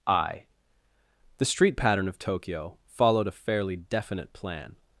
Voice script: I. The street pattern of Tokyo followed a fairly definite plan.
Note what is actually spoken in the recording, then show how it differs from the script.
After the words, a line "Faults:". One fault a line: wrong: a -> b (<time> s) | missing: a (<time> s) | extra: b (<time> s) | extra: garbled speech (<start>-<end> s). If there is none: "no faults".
I. The street pattern of Tokyo followed a fairly definite plan.
Faults:
no faults